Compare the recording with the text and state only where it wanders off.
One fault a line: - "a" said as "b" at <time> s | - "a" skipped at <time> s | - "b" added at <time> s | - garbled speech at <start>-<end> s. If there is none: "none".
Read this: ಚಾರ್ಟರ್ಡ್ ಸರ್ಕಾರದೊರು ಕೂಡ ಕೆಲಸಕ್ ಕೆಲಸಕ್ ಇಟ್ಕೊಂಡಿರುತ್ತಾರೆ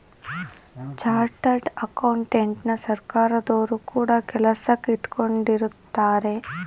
- "ಅಕೌಂಟೆಂಟನ" added at 1.9 s
- "ಕೆಲಸಕ್" skipped at 4.9 s